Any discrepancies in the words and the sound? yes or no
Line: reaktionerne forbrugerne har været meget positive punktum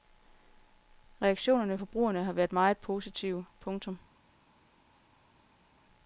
no